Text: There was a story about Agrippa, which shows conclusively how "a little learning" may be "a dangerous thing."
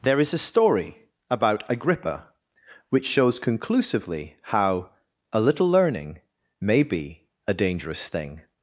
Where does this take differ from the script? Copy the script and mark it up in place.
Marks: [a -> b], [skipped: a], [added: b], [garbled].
There [was -> is] a story about Agrippa, which shows conclusively how "a little learning" may be "a dangerous thing."